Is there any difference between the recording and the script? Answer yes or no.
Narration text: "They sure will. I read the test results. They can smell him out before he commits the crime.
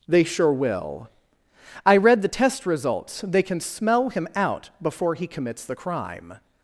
no